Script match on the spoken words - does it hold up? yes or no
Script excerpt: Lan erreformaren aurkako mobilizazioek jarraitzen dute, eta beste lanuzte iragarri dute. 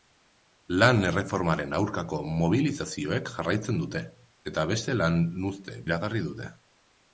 yes